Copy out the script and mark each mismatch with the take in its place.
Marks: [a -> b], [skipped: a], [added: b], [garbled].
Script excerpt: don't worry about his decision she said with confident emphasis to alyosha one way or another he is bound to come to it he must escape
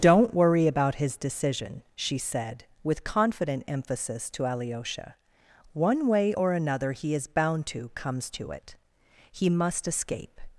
don't worry about his decision she said with confident emphasis to alyosha one way or another he is bound to [come -> comes] to it he must escape